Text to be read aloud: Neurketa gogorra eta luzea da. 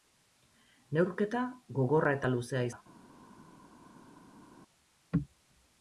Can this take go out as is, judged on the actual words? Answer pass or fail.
pass